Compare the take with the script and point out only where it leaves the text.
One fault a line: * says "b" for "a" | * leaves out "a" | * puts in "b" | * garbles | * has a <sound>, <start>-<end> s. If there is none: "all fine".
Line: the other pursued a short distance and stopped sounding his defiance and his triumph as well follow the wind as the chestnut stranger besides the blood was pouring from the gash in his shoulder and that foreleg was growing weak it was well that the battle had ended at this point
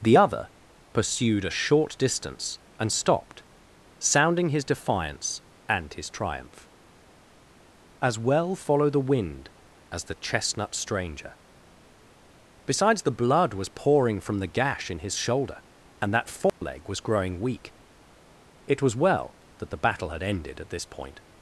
* has a dropout, 16.5-16.6 s